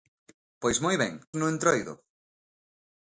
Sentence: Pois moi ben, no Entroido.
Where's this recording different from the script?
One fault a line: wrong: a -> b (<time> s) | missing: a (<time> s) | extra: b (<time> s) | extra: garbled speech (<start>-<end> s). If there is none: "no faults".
no faults